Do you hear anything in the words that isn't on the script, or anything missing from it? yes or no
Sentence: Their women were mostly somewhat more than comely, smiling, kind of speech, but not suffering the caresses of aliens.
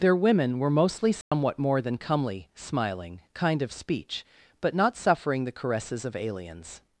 no